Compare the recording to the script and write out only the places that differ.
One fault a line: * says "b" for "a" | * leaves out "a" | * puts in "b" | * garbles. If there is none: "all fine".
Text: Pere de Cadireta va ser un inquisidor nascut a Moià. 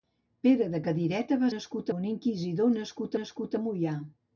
* says "nascut" for "ser"
* puts in "nascut"